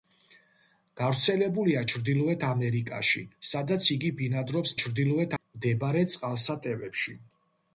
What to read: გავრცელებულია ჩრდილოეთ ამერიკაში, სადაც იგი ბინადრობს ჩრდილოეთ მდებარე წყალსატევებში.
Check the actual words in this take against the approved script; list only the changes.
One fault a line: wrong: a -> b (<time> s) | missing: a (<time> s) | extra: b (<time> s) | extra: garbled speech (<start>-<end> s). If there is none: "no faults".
no faults